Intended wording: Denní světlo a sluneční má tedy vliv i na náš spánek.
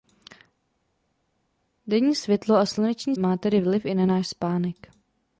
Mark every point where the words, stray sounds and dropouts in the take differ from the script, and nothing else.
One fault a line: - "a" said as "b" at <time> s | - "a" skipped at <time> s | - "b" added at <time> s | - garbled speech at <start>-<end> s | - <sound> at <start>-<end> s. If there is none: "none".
none